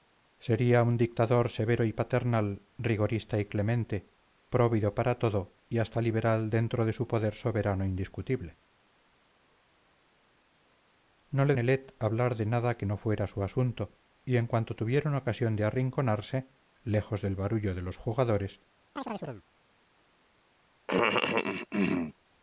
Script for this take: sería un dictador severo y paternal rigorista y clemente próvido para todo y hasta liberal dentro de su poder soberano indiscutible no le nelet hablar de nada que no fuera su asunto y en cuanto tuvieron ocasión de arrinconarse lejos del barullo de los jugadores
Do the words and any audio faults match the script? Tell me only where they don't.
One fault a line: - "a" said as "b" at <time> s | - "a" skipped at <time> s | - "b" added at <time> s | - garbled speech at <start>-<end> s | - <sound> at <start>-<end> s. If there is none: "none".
- chirp at 19.0-19.4 s
- cough at 20.9-22.1 s